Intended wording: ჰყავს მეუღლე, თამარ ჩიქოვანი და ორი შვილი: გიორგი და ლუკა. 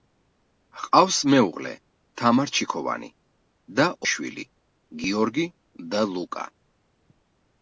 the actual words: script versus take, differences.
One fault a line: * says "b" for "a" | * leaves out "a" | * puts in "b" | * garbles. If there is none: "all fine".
* leaves out "ორი"